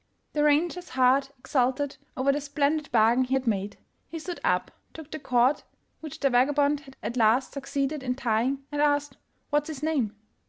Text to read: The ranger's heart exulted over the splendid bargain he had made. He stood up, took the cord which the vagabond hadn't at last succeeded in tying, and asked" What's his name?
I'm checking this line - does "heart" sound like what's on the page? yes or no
yes